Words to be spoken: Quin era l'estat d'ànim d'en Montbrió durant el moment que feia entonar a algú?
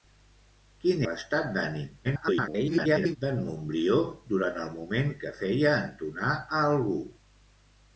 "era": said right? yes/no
no